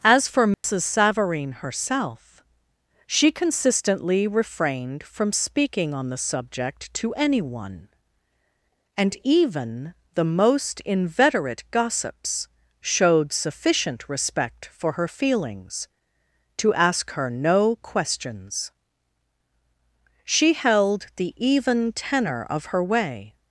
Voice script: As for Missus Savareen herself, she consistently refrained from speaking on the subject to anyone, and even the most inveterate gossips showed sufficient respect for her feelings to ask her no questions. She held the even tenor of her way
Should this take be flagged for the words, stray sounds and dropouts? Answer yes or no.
yes